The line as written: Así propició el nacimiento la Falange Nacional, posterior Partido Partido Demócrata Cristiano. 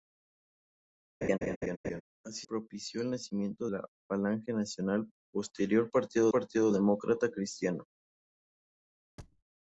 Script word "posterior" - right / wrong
right